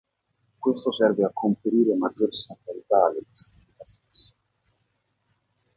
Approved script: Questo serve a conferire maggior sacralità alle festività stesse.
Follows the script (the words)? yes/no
yes